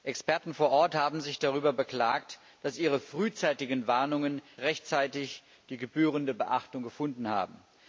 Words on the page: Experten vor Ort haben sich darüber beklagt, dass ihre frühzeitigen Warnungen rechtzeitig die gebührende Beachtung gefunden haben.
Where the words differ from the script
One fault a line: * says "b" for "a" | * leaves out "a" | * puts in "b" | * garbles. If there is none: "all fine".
all fine